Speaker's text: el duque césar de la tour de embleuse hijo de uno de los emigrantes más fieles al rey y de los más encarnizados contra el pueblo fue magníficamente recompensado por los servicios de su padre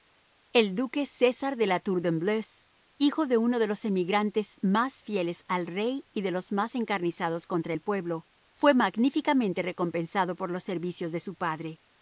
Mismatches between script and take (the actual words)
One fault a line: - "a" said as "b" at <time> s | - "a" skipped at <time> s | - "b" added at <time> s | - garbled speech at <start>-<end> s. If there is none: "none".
none